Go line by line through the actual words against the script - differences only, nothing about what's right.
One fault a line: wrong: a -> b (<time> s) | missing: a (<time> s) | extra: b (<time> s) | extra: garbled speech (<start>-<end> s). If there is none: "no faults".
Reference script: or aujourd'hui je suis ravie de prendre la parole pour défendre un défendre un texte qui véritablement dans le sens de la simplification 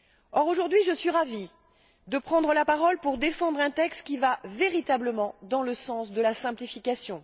missing: défendre un (3.7 s)
extra: va (4.2 s)